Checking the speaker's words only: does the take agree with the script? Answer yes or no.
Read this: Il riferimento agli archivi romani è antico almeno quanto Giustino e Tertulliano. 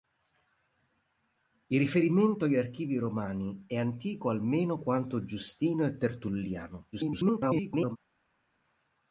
no